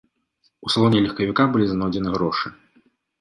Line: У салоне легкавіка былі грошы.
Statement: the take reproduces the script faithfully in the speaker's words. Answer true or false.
false